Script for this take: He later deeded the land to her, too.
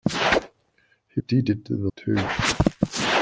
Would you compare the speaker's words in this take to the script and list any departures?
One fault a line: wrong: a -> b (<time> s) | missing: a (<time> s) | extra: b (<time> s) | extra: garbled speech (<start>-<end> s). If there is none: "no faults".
missing: later (1.2 s)
missing: land to her (1.9 s)